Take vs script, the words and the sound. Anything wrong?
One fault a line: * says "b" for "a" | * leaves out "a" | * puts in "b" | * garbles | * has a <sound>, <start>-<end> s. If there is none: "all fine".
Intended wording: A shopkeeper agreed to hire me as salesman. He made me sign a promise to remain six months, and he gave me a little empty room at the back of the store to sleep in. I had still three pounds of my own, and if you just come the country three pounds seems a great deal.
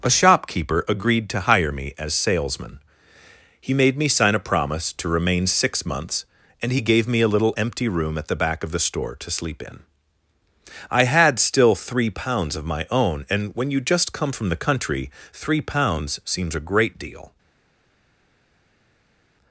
* says "when" for "if"
* puts in "from"